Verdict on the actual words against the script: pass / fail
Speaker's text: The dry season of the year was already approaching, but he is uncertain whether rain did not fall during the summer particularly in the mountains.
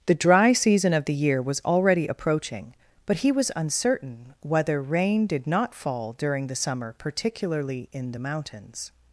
fail